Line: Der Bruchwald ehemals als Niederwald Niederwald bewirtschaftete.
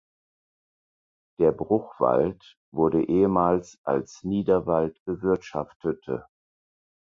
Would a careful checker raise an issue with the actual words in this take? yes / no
yes